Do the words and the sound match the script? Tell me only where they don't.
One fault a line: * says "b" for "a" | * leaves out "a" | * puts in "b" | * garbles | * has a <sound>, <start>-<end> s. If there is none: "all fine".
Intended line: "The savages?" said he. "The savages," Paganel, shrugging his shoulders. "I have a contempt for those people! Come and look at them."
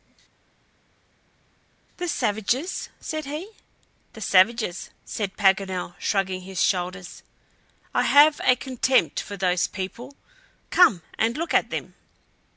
* puts in "said"